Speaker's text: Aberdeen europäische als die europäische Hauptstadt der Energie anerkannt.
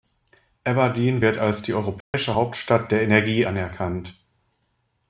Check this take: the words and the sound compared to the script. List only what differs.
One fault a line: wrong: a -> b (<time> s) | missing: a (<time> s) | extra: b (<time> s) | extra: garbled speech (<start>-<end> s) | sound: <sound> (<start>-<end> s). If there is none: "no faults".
wrong: europäische -> wird (1.2 s)
sound: dropout (2.0-2.1 s)